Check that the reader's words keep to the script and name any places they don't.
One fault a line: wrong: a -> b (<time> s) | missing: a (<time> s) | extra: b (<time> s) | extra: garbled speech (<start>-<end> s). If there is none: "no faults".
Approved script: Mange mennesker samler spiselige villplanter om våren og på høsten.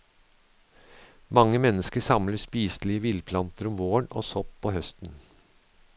extra: sopp (4.3 s)